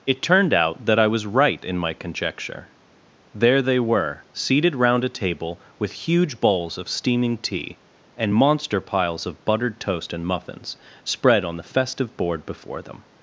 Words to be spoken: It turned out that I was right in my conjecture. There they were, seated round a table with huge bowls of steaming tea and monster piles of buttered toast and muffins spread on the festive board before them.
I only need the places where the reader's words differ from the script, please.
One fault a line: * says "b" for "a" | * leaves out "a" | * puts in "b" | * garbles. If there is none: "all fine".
all fine